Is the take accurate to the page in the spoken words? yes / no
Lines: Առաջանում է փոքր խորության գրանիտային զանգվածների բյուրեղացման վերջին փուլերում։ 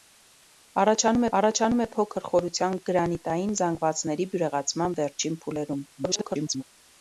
no